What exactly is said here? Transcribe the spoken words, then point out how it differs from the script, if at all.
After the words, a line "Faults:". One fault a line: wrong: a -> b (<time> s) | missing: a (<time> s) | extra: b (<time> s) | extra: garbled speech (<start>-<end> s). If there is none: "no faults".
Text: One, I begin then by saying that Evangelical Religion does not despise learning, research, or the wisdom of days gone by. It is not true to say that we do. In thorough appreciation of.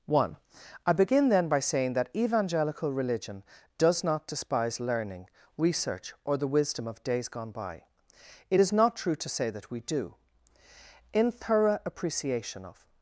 One, I begin then by saying that Evangelical Religion does not despise learning, research, or the wisdom of days gone by. It is not true to say that we do. In thorough appreciation of.
Faults:
no faults